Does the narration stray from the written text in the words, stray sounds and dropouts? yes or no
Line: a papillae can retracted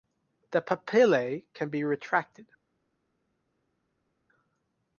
yes